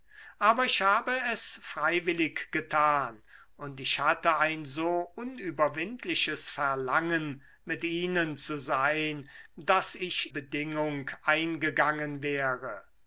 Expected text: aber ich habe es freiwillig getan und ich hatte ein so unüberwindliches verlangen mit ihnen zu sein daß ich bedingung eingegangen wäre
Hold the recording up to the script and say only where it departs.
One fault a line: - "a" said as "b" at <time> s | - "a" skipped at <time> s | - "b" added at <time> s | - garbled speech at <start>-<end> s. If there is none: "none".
none